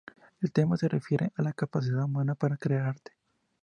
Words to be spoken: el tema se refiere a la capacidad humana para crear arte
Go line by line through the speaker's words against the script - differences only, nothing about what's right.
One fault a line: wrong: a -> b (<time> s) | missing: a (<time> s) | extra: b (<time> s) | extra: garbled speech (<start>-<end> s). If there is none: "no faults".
no faults